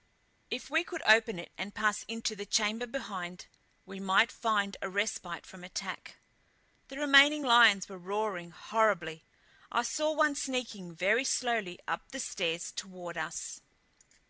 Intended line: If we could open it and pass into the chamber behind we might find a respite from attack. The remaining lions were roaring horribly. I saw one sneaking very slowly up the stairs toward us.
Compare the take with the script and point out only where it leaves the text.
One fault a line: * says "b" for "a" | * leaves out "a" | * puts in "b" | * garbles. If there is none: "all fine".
all fine